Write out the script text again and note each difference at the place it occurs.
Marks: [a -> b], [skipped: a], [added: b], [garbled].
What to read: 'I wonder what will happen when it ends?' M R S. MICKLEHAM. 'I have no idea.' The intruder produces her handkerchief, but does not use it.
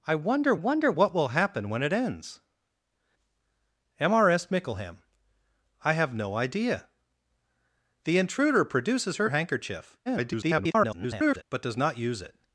'I wonder [added: wonder] what will happen when it ends?' M R S. MICKLEHAM. 'I have no idea.' The intruder produces her handkerchief, [garbled] but does not use it.